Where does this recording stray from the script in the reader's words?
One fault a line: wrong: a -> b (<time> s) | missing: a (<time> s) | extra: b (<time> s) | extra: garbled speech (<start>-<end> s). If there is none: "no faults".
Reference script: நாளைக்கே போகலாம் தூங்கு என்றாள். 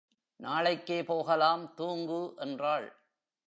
no faults